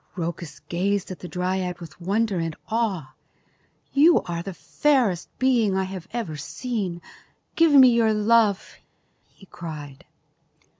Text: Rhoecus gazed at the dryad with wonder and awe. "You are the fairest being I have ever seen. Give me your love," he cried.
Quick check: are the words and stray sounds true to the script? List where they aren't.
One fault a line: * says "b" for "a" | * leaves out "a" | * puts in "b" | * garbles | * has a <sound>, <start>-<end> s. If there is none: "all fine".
all fine